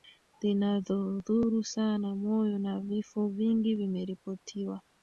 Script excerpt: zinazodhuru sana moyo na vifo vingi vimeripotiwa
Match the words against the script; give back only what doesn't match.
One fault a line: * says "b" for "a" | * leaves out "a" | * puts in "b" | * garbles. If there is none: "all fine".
all fine